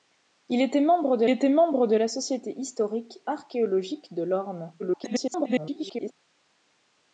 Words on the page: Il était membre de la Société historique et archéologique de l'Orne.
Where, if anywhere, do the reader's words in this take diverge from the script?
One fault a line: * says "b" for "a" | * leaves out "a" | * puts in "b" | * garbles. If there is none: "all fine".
* puts in "était membre de"
* leaves out "et"
* garbles